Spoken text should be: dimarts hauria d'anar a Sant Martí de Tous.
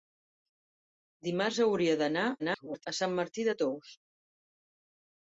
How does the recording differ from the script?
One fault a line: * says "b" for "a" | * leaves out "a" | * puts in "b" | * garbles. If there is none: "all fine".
* garbles